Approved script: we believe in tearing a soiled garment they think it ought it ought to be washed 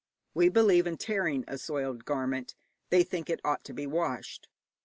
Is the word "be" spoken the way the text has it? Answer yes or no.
yes